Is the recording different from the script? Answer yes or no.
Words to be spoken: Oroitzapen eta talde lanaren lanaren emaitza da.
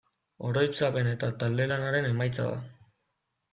yes